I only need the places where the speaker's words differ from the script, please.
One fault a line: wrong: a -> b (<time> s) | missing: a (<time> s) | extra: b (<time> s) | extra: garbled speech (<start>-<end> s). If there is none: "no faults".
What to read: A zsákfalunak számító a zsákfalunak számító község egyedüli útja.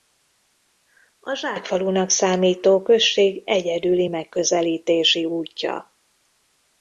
missing: a zsákfalunak számító (2.8 s)
extra: megközelítési (4.1 s)